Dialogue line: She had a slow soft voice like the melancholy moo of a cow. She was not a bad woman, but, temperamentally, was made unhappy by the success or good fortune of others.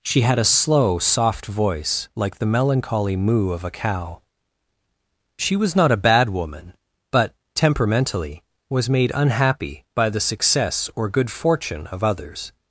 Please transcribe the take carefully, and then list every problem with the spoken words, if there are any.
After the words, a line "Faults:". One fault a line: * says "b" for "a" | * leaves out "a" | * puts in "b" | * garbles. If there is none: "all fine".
She had a slow soft voice like the melancholy moo of a cow. She was not a bad woman, but, temperamentally, was made unhappy by the success or good fortune of others.
Faults:
all fine